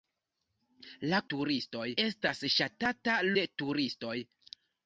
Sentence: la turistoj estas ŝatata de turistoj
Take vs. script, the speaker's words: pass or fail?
pass